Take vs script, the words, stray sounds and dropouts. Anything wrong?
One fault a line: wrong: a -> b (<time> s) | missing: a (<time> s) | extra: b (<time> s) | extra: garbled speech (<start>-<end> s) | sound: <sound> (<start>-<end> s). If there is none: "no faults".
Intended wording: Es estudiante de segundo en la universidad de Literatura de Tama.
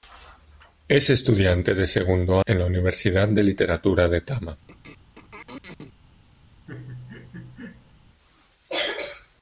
sound: throat clearing (4.7-5.9 s)
sound: laugh (6.7-7.9 s)